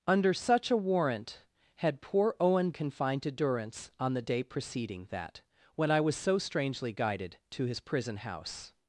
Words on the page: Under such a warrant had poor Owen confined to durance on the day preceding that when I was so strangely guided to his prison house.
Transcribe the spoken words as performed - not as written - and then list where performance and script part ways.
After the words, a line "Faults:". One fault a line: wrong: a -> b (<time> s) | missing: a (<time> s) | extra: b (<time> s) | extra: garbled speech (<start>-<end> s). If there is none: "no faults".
Under such a warrant had poor Owen confined to durance on the day preceding that when I was so strangely guided to his prison house.
Faults:
no faults